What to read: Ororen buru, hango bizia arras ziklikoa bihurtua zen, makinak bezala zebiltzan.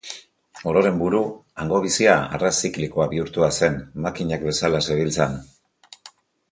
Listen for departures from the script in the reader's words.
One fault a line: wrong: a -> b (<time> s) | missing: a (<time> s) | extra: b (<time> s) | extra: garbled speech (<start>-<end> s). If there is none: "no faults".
no faults